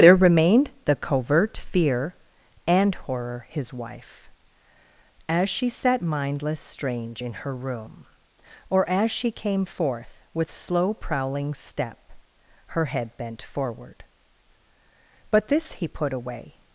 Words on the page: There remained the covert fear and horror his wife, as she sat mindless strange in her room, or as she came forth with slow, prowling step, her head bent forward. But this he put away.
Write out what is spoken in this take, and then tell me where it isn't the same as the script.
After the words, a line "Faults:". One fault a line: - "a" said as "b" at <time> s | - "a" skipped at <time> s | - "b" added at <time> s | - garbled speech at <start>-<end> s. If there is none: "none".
There remained the covert fear and horror his wife, as she sat mindless strange in her room, or as she came forth with slow, prowling step, her head bent forward. But this he put away.
Faults:
none